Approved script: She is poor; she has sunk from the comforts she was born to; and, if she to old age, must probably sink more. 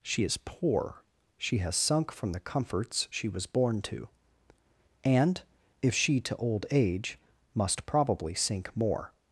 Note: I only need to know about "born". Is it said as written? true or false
true